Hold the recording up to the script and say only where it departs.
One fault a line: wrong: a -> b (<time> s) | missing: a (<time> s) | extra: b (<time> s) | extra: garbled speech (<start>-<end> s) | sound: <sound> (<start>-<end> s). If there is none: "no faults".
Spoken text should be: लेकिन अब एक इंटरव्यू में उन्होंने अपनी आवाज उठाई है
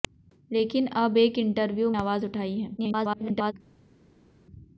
missing: में उन्होंने अपनी (1.9 s)
extra: garbled speech (2.8-3.5 s)